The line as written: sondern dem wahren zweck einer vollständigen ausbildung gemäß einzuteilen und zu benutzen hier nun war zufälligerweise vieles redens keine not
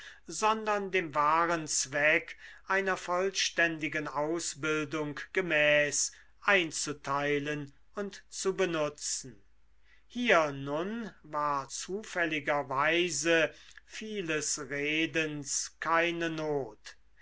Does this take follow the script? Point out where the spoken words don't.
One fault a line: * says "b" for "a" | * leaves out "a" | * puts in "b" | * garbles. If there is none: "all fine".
all fine